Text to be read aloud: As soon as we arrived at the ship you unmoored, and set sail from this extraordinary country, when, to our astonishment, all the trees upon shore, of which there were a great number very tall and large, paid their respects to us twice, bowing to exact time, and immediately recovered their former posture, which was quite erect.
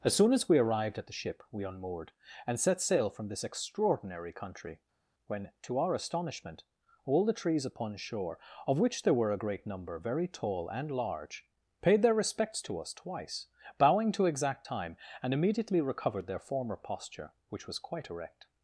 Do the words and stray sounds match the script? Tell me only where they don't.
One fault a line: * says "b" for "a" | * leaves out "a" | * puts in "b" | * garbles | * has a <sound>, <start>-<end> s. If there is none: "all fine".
* says "we" for "you"